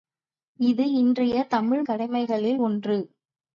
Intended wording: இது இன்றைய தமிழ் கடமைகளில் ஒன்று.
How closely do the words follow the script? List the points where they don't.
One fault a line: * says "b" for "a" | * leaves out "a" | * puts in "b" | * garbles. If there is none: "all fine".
all fine